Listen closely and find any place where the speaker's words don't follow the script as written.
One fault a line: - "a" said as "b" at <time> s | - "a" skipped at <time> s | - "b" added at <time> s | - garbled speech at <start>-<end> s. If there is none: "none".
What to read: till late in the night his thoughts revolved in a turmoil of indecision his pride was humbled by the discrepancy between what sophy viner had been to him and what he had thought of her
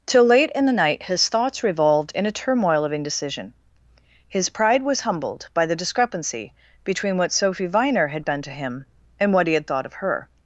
none